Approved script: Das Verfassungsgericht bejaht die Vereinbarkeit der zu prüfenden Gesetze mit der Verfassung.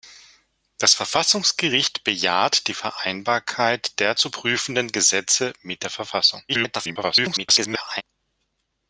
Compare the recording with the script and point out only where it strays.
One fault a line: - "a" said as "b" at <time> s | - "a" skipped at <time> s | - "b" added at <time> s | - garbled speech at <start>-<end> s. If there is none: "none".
- garbled speech at 6.5-8.0 s